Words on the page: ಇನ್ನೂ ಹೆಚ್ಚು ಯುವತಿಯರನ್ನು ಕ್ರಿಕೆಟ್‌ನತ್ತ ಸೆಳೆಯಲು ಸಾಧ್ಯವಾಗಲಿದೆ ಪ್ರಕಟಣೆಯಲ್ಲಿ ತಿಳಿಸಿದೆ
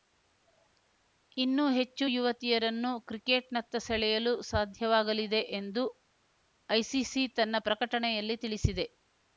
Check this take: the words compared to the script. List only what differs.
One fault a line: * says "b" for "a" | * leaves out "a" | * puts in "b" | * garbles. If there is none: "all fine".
* puts in "ಎಂದು ಐಸಿಸಿ ತನ್ನ"